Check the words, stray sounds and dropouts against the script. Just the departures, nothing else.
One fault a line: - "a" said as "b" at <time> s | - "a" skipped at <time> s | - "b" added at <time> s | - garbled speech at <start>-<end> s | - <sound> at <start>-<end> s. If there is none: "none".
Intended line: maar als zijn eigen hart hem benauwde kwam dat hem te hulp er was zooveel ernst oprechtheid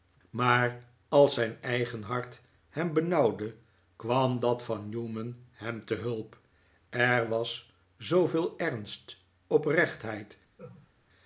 - "van newman" added at 4.6 s
- laugh at 10.6-10.9 s